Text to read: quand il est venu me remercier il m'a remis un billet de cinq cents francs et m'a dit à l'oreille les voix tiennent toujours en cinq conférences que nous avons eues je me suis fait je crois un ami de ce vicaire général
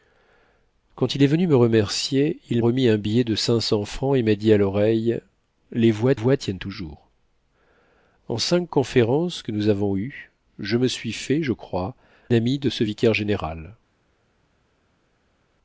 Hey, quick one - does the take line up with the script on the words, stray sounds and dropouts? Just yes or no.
no